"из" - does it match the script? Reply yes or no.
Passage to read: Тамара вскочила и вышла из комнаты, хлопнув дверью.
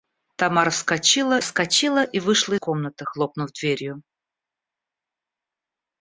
no